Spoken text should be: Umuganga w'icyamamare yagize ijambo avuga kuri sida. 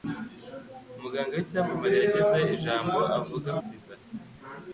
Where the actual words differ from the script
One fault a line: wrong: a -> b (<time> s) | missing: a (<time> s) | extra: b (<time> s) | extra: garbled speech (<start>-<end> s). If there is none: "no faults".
missing: kuri (3.5 s)